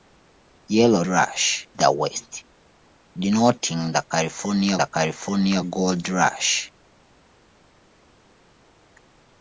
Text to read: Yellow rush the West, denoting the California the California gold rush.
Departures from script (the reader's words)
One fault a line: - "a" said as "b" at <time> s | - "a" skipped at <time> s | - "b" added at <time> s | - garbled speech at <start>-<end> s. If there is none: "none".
none